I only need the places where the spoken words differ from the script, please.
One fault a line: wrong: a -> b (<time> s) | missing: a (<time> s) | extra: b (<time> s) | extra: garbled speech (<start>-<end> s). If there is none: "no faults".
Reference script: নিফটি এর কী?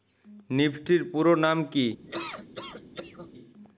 extra: পুরোনাম (1.1 s)